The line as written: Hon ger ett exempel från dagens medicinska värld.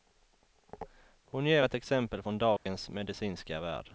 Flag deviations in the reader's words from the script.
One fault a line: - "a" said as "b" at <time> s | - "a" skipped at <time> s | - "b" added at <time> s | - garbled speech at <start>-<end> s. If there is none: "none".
none